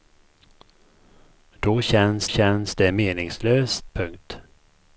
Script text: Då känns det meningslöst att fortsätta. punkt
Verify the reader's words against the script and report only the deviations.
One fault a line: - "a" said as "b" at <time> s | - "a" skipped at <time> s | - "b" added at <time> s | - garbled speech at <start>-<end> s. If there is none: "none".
- "känns" added at 2.3 s
- "att fortsätta" skipped at 3.9 s